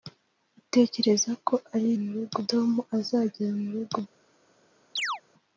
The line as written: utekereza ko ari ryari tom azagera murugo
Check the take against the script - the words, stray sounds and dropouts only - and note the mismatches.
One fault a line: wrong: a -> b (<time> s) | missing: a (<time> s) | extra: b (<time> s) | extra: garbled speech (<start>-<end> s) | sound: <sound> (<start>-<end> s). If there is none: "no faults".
wrong: ryari -> murugo (2.0 s)
sound: chirp (5.0-5.2 s)